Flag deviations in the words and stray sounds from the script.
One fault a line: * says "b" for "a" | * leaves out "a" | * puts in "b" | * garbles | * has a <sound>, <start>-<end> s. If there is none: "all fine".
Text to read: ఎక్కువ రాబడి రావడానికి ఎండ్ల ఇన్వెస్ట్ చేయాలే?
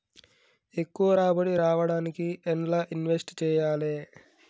all fine